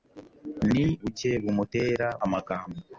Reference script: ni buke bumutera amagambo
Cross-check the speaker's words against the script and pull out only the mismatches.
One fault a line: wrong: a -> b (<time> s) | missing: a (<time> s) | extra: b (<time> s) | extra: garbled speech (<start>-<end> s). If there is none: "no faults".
no faults